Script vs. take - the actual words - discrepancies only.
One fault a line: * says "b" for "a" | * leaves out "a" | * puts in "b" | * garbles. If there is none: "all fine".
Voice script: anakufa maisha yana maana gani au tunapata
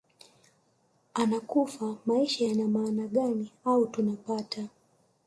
all fine